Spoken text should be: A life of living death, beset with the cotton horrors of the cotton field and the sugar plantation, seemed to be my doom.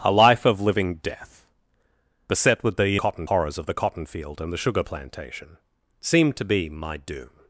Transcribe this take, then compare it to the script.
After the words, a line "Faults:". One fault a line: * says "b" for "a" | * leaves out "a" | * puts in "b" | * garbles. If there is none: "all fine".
A life of living death, beset with the cotton horrors of the cotton field and the sugar plantation, seemed to be my doom.
Faults:
all fine